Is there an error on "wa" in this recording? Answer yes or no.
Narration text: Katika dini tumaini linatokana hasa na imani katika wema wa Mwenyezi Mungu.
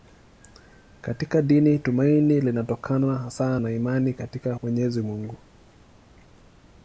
yes